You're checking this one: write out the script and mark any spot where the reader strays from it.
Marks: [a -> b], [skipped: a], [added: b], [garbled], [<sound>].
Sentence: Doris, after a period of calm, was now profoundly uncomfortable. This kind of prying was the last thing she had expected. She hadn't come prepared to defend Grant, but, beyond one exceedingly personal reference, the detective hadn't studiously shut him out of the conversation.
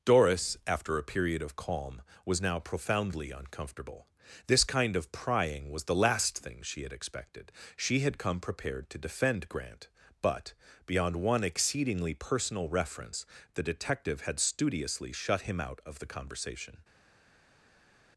Doris, after a period of calm, was now profoundly uncomfortable. This kind of prying was the last thing she had expected. She [hadn't -> had] come prepared to defend Grant, but, beyond one exceedingly personal reference, the detective [hadn't -> had] studiously shut him out of the conversation.